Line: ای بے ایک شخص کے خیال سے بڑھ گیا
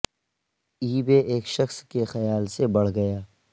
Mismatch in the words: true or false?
false